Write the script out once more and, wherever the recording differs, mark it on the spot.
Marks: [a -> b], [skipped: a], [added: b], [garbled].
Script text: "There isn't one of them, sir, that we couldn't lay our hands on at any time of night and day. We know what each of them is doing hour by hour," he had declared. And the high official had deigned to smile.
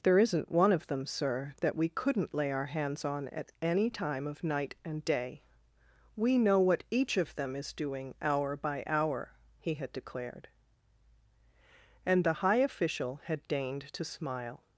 "There isn't one of them, sir, that we couldn't lay our hands on at any time of night and day. We know what each of them is doing hour by hour," he had declared. And the high official had deigned to smile.